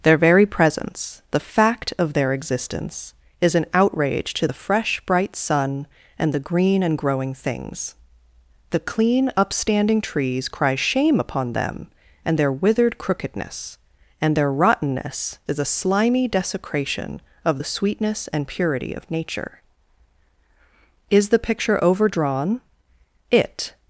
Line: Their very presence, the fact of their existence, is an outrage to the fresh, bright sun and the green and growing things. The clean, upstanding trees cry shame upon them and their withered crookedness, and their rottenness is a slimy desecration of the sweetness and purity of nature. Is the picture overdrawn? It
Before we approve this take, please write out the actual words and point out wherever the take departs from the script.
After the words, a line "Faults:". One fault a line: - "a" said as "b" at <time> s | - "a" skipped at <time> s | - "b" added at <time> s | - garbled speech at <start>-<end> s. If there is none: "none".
Their very presence, the fact of their existence, is an outrage to the fresh, bright sun and the green and growing things. The clean, upstanding trees cry shame upon them and their withered crookedness, and their rottenness is a slimy desecration of the sweetness and purity of nature. Is the picture overdrawn? It
Faults:
none